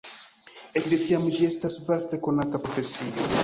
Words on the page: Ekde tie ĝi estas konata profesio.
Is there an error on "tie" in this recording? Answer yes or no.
yes